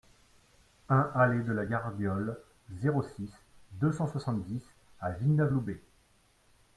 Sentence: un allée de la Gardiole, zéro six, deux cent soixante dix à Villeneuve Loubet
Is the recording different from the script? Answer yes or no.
no